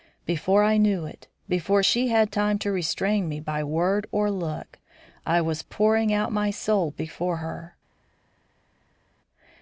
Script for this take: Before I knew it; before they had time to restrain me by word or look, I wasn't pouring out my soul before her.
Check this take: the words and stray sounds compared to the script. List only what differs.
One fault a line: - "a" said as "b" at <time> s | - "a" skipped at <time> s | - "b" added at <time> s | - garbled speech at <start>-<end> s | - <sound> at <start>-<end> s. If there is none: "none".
- "they" said as "she" at 1.8 s
- "wasn't" said as "was" at 5.4 s